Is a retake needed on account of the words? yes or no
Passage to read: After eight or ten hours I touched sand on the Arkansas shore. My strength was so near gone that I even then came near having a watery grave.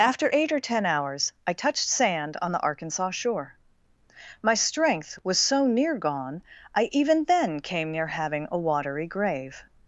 yes